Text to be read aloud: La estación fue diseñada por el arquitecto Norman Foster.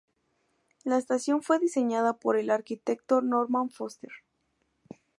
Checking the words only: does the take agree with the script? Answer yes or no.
yes